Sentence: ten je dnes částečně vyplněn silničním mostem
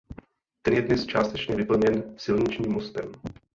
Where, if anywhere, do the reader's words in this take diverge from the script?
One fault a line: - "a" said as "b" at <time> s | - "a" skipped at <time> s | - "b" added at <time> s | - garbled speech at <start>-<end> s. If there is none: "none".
none